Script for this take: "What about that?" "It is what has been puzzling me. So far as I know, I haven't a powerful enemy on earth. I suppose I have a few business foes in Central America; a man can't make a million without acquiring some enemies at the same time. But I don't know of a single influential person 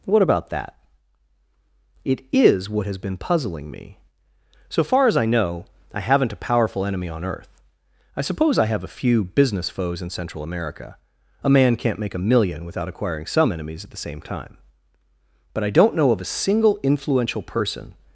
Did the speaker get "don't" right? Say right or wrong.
right